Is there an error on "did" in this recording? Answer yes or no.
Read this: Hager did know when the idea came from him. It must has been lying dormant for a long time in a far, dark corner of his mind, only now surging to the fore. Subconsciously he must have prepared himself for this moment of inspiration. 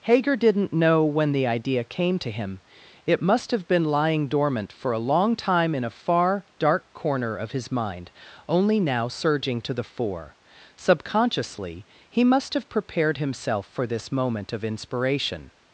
yes